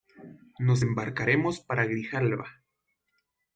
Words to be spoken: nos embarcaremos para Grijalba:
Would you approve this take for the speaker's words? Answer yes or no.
yes